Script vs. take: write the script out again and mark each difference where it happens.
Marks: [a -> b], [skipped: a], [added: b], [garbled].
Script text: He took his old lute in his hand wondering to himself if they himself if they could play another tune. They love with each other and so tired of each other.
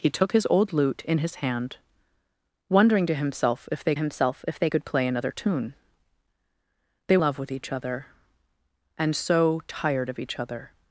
He took his old lute in his hand wondering to himself if they himself if they could play another tune. They love with each other and so tired of each other.